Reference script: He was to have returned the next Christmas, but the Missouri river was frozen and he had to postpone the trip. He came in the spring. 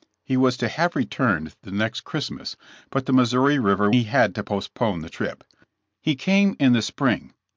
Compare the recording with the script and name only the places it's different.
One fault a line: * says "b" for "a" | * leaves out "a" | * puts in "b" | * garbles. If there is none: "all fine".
* leaves out "was frozen and"